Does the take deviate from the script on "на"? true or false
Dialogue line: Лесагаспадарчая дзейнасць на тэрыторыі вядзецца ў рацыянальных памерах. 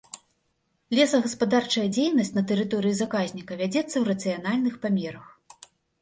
false